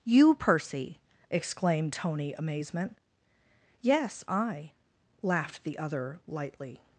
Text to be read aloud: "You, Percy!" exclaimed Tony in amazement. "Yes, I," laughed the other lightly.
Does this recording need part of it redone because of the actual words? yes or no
yes